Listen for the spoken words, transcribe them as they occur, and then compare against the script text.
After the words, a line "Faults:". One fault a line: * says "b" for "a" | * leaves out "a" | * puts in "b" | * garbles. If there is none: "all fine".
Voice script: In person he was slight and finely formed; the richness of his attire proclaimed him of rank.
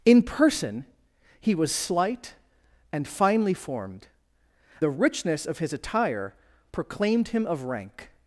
In person he was slight and finely formed; the richness of his attire proclaimed him of rank.
Faults:
all fine